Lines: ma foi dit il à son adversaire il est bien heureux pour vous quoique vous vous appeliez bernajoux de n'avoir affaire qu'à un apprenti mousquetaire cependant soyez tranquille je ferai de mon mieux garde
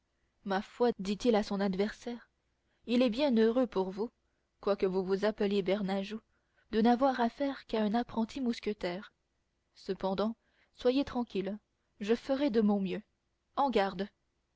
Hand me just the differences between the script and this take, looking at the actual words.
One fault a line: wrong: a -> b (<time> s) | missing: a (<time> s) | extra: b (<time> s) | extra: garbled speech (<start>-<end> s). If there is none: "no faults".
extra: en (13.6 s)